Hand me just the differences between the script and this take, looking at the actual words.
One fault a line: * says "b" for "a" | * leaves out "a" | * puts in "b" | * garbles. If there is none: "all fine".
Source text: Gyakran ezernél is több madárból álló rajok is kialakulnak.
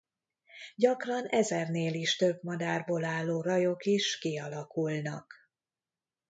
all fine